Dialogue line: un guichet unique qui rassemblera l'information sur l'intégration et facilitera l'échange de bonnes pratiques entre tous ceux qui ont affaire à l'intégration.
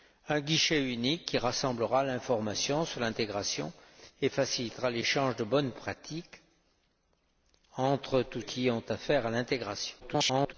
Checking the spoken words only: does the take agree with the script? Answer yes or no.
no